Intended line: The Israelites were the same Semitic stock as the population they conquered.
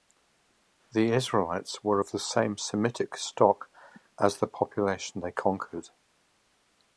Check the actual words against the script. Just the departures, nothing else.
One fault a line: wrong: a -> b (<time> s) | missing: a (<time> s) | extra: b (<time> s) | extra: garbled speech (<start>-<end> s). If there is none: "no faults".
extra: of (2.0 s)